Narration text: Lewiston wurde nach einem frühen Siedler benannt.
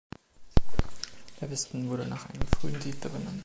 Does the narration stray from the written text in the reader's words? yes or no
no